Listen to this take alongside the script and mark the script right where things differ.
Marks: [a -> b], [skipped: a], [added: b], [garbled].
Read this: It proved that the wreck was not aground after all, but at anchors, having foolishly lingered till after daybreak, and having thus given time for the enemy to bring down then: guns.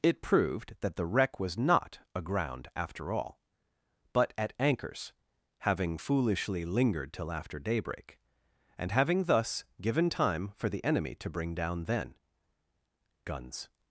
It proved that the wreck was not aground after all, but at anchors, having foolishly lingered till after daybreak, and having thus given time for the enemy to bring down then: guns.